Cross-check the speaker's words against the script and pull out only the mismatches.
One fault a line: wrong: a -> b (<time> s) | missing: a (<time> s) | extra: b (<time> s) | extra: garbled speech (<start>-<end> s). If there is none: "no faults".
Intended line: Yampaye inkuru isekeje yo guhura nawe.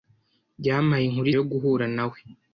missing: isekeje (1.3 s)